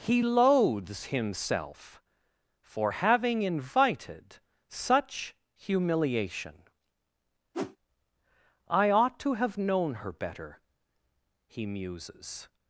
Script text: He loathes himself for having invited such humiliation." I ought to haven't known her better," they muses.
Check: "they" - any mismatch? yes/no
yes